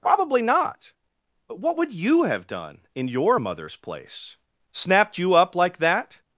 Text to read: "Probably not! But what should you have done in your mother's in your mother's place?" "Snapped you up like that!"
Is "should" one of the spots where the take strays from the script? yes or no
yes